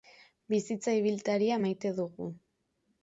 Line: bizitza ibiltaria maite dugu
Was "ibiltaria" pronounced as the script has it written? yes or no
yes